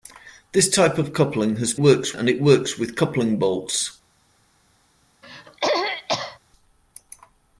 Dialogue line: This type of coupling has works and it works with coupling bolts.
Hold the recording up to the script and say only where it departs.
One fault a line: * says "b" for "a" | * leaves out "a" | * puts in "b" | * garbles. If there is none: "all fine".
all fine